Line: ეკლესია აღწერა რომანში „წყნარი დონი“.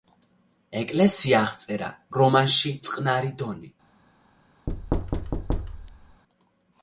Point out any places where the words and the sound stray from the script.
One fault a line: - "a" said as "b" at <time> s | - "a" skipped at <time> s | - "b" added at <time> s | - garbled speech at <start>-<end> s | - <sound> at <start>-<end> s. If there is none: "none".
- thud at 4.7-6.2 s